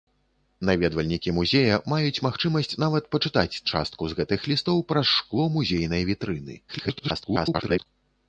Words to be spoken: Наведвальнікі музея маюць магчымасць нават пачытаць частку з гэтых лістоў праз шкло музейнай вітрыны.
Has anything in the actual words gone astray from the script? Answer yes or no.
yes